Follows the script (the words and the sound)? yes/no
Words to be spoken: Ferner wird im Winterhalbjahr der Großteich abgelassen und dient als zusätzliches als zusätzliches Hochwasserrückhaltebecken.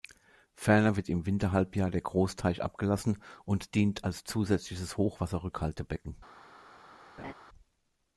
no